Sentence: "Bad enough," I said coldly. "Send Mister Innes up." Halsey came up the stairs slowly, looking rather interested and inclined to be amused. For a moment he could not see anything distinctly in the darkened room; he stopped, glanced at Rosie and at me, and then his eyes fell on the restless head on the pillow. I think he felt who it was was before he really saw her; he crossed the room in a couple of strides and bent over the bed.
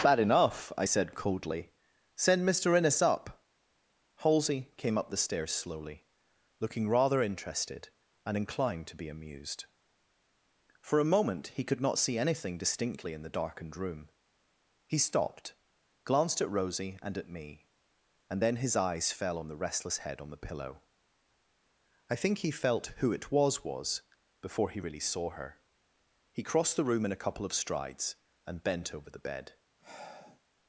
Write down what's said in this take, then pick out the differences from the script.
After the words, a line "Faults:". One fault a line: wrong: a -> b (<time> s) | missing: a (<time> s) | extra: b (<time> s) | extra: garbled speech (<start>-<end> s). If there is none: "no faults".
"Bad enough," I said coldly. "Send Mister Innes up." Halsey came up the stairs slowly, looking rather interested and inclined to be amused. For a moment he could not see anything distinctly in the darkened room; he stopped, glanced at Rosie and at me, and then his eyes fell on the restless head on the pillow. I think he felt who it was was before he really saw her; he crossed the room in a couple of strides and bent over the bed.
Faults:
no faults